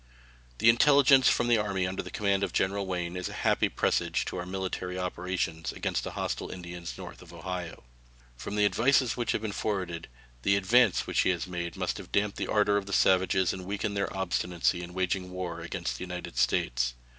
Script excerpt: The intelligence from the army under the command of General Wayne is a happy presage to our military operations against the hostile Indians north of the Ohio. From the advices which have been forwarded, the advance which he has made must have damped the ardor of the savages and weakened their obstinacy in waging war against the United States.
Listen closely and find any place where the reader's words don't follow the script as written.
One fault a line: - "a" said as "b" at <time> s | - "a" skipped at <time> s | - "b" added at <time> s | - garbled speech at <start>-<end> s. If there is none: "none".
none